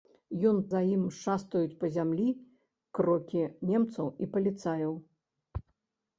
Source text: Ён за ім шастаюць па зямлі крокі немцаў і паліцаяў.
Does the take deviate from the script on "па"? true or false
false